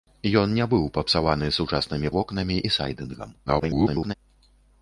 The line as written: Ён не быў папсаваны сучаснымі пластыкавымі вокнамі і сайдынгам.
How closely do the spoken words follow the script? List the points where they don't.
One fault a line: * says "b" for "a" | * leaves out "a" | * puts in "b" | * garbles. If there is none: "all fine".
* leaves out "пластыкавымі"
* garbles